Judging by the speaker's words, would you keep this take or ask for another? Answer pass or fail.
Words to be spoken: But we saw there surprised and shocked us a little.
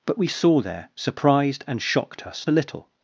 pass